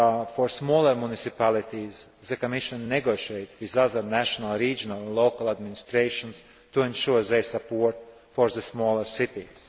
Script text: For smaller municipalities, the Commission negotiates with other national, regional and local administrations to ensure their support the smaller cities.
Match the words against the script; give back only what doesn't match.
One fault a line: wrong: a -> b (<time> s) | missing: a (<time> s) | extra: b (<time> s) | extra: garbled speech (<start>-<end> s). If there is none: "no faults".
extra: for (8.3 s)